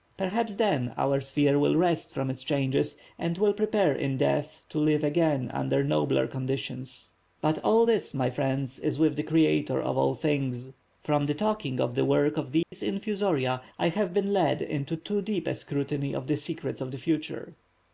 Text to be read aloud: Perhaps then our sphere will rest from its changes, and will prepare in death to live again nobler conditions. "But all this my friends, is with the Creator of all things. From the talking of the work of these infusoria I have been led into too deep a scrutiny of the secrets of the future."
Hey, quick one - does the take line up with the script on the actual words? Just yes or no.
no